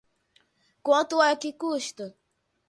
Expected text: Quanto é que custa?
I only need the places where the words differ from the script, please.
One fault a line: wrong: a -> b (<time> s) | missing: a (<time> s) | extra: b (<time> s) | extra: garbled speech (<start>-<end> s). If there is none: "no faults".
no faults